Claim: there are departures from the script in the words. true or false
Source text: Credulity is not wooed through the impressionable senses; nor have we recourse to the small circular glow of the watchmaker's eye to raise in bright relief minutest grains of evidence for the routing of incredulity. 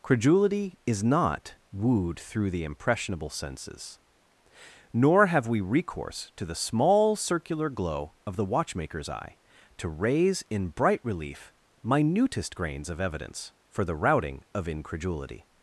false